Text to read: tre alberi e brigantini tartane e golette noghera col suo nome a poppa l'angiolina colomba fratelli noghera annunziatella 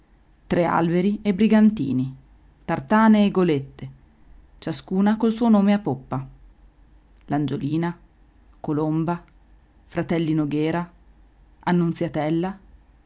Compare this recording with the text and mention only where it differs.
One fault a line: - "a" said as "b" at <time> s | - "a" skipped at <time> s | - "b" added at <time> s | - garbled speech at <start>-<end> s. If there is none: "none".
- "noghera" said as "ciascuna" at 4.6 s